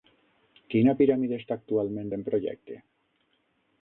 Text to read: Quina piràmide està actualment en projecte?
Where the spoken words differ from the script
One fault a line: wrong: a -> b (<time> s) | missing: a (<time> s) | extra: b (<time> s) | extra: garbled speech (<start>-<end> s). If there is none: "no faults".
no faults